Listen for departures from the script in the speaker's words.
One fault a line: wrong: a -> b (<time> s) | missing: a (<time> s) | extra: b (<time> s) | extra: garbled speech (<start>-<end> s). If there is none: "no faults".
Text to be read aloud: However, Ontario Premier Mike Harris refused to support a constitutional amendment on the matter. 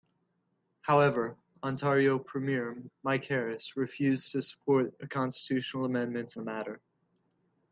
missing: on (6.3 s)